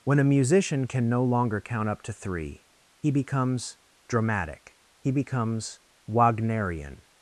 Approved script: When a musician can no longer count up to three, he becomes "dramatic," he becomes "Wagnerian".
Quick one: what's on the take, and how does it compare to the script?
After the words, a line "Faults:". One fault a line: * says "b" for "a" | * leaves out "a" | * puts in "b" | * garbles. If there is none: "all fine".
When a musician can no longer count up to three, he becomes "dramatic," he becomes "Wagnerian".
Faults:
all fine